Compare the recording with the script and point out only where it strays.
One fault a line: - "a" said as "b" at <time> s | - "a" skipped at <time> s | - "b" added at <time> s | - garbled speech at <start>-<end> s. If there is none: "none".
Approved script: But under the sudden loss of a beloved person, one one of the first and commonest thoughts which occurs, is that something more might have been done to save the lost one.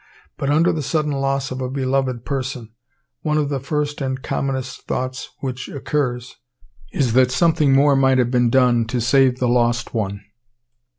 - "one" skipped at 3.4 s